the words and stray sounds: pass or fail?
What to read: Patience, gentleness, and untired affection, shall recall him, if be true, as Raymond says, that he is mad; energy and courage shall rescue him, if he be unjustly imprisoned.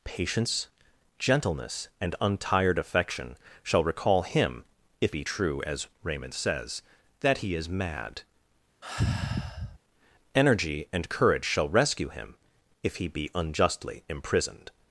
fail